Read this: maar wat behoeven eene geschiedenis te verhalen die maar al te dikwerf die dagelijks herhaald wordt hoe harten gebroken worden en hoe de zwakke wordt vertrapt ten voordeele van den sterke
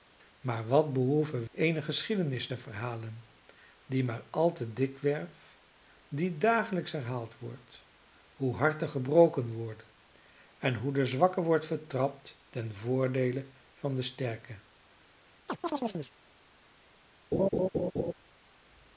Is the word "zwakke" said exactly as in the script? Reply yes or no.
yes